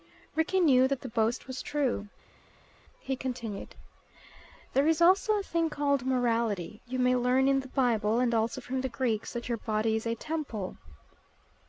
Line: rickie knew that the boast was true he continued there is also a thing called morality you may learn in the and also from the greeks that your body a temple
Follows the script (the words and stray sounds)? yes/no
no